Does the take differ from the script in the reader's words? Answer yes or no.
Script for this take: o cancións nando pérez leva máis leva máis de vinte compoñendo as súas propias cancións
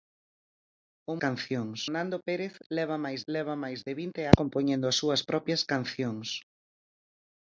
no